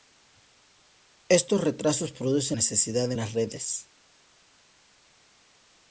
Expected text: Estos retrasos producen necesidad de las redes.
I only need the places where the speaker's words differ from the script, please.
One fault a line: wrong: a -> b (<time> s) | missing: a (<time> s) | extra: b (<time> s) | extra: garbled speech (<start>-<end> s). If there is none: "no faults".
no faults